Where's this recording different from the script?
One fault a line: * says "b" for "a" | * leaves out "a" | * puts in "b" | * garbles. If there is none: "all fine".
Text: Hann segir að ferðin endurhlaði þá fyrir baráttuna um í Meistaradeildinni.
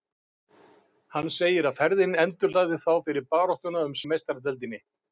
all fine